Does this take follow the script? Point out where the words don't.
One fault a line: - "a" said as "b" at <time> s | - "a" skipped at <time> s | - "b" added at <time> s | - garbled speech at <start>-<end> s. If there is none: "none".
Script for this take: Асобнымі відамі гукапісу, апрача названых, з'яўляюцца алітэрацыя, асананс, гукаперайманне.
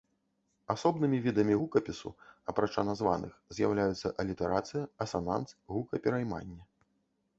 none